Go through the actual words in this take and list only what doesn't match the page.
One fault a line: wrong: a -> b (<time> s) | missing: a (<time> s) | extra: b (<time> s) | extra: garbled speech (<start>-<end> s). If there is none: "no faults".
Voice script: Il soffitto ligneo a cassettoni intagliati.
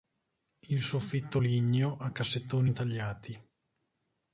no faults